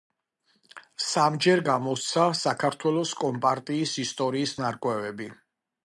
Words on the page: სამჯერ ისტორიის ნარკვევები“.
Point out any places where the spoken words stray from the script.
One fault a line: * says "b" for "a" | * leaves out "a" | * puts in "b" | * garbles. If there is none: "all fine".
* puts in "გამოსცა საქართველოს კომპარტიის"